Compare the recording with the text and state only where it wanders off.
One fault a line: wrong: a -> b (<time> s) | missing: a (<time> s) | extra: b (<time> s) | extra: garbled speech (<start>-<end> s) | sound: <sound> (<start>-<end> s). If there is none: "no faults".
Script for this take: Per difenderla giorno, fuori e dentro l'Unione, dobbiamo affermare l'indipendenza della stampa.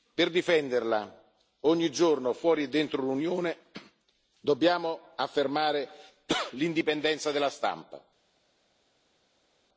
extra: ogni (1.6 s)